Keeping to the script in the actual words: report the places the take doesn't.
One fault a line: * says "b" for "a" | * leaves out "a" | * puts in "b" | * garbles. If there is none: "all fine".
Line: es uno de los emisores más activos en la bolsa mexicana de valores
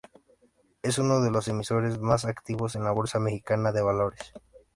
all fine